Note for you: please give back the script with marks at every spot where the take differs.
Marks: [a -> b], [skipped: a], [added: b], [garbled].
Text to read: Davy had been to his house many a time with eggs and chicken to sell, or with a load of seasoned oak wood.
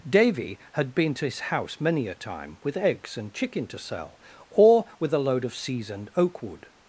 Davy had been to his house many a time with eggs and chicken to sell, or with a load of seasoned oak wood.